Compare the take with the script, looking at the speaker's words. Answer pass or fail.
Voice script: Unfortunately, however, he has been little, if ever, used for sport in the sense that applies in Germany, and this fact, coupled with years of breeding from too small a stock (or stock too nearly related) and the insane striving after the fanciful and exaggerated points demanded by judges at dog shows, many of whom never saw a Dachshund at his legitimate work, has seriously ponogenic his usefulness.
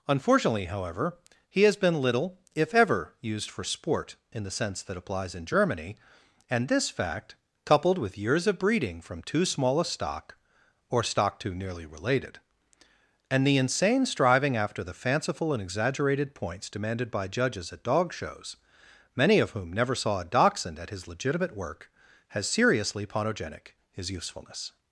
pass